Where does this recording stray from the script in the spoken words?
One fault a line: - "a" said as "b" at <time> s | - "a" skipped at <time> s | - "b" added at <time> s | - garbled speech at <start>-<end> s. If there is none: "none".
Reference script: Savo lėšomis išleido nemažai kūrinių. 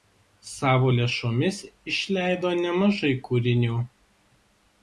none